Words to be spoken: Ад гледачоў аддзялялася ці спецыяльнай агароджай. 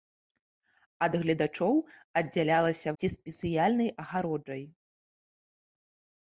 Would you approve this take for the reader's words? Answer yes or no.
yes